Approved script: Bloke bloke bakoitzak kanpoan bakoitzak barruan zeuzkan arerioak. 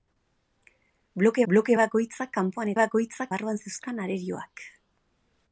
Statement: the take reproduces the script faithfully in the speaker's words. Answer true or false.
true